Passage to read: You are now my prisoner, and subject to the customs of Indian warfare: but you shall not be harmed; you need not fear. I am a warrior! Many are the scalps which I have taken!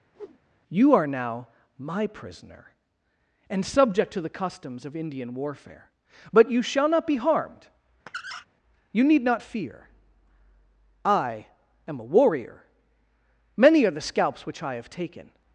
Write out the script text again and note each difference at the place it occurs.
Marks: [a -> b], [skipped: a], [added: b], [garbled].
You are now my prisoner, and subject to the customs of Indian warfare: but you shall not be harmed; you need not fear. I am a warrior! Many are the scalps which I have taken!